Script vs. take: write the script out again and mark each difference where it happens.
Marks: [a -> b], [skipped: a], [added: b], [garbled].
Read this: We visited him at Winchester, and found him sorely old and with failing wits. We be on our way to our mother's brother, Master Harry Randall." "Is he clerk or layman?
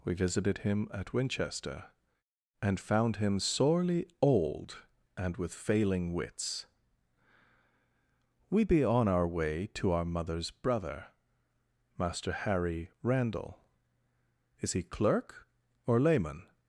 We visited him at Winchester, and found him sorely old and with failing wits. We be on our way to our mother's brother, Master Harry Randall." "Is he clerk or layman?